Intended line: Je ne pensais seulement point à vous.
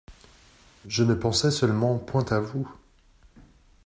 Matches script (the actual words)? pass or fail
pass